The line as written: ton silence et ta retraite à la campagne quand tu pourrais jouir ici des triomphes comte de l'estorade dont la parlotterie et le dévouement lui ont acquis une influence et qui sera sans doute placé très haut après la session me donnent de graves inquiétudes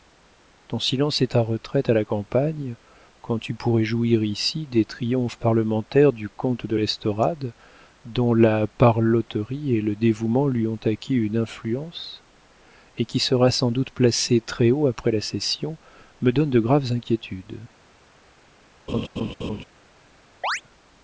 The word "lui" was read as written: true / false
true